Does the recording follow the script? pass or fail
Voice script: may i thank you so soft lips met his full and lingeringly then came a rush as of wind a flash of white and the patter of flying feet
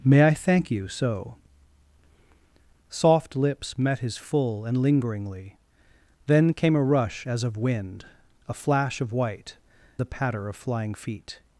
fail